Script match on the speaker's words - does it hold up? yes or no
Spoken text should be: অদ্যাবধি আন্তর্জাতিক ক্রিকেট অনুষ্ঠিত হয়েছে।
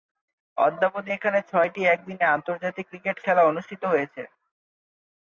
no